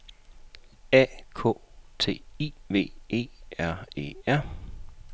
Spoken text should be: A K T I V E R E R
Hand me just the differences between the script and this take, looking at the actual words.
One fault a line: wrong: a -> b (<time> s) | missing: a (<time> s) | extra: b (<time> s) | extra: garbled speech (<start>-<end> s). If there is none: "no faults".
no faults